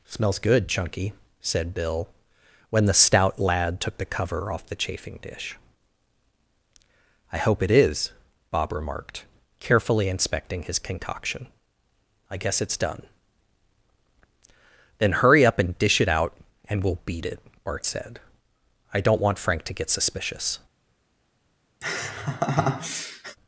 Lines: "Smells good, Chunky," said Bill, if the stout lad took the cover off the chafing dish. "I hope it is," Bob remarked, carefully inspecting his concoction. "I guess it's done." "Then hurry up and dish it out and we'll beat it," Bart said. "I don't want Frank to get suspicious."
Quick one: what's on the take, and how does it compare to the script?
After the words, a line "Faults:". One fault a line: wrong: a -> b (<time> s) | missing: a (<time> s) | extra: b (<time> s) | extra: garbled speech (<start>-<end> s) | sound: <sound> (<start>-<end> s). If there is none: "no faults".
"Smells good, Chunky," said Bill, when the stout lad took the cover off the chafing dish. "I hope it is," Bob remarked, carefully inspecting his concoction. "I guess it's done." "Then hurry up and dish it out and we'll beat it," Bart said. "I don't want Frank to get suspicious."
Faults:
wrong: if -> when (2.7 s)
sound: laugh (21.8-23.4 s)